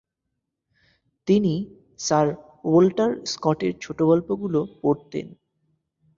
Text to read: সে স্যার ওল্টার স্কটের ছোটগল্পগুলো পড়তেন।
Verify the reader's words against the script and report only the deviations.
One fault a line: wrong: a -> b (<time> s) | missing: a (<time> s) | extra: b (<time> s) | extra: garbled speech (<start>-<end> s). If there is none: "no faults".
wrong: সে -> তিনি (1.3 s)